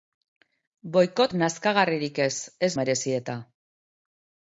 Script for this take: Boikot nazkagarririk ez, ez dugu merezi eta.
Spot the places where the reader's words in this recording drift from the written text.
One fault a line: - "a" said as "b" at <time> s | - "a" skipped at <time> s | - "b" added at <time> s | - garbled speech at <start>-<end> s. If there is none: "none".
- "dugu" skipped at 2.7 s